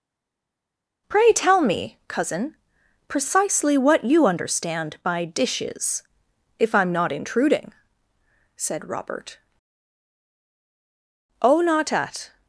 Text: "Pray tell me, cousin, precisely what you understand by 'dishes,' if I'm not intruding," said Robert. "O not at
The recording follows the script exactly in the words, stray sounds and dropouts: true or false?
true